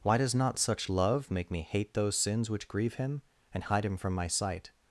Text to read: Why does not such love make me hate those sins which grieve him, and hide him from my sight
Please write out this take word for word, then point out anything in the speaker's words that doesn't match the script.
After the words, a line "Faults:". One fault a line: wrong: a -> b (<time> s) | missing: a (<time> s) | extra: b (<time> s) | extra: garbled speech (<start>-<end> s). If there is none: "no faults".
Why does not such love make me hate those sins which grieve him, and hide him from my sight
Faults:
no faults